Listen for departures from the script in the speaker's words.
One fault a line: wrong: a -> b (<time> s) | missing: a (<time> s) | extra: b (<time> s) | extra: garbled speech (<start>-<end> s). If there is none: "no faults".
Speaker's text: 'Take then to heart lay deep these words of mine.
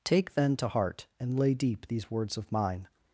extra: and (1.2 s)